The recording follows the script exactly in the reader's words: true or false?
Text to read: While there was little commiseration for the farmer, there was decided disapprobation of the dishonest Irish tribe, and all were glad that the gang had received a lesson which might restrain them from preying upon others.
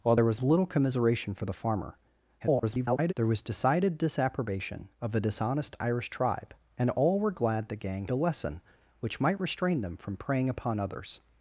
false